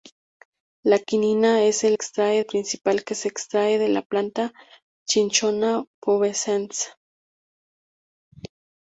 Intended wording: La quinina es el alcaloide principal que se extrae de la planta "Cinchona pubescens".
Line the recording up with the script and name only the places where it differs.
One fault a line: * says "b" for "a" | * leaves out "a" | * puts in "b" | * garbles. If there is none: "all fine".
* says "extrae" for "alcaloide"